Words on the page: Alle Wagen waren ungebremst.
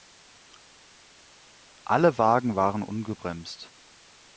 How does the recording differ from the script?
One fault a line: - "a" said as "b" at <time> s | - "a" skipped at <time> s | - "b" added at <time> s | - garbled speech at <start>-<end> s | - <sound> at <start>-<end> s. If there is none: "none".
none